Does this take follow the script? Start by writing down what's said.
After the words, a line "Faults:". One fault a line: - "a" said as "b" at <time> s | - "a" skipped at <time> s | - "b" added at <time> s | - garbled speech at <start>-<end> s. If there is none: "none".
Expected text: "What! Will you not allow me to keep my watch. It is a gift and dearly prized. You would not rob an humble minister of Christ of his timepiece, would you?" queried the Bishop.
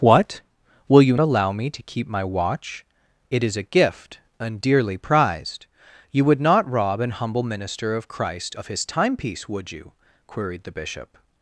"What! Will you allow me to keep my watch. It is a gift and dearly prized. You would not rob an humble minister of Christ of his timepiece, would you?" queried the Bishop.
Faults:
- "not" skipped at 1.1 s